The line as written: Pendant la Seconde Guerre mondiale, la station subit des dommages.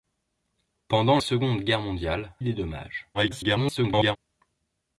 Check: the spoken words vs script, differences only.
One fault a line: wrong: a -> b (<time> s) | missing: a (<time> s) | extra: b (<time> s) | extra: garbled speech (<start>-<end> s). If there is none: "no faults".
missing: la (1.2 s)
missing: la station subit (2.3 s)
extra: garbled speech (3.1-4.2 s)